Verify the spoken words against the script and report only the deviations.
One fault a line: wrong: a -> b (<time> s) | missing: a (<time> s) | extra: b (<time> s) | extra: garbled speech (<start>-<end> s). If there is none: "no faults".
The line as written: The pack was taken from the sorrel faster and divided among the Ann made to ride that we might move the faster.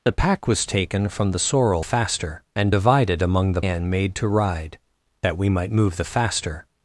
no faults